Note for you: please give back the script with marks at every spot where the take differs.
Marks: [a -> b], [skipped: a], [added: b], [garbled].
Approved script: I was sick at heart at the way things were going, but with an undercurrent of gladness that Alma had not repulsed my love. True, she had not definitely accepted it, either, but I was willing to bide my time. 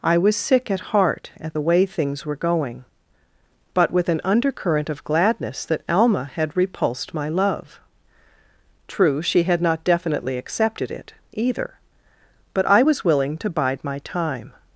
I was sick at heart at the way things were going, but with an undercurrent of gladness that Alma had [skipped: not] repulsed my love. True, she had not definitely accepted it, either, but I was willing to bide my time.